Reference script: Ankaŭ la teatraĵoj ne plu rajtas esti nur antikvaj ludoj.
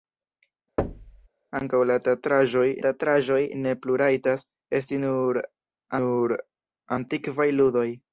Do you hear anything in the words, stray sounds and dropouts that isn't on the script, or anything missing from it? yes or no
yes